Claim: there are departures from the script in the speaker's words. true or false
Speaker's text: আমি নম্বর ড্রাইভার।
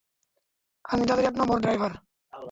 true